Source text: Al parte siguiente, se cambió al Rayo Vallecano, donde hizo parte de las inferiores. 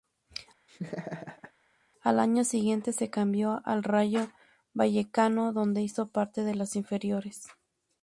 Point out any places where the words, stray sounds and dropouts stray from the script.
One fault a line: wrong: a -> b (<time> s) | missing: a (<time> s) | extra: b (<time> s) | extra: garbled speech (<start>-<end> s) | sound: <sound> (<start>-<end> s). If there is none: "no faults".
sound: laugh (0.7-1.5 s)
wrong: parte -> año (2.2 s)